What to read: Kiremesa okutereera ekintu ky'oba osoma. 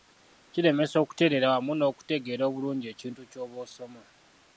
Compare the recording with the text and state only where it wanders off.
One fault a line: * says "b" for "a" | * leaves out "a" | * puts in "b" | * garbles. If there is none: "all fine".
* puts in "wamu n'okutegeera obulungi"